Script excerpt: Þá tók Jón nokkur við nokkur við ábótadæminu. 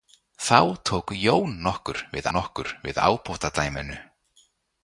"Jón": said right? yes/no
yes